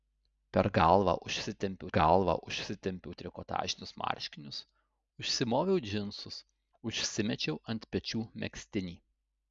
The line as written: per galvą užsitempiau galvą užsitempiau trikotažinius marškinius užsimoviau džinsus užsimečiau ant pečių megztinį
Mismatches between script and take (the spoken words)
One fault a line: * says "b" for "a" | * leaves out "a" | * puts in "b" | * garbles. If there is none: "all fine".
all fine